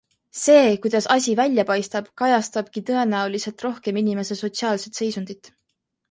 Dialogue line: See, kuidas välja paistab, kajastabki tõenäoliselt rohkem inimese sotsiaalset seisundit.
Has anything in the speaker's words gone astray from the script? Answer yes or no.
yes